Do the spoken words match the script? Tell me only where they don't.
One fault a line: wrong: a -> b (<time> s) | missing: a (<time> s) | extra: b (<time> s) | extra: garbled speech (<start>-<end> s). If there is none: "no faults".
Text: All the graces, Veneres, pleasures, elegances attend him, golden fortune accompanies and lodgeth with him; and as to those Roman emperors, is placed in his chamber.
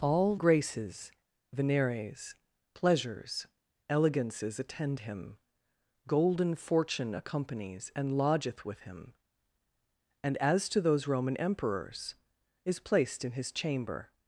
missing: the (0.4 s)